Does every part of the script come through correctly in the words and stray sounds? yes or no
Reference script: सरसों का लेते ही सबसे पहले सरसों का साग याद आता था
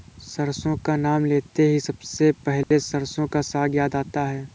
no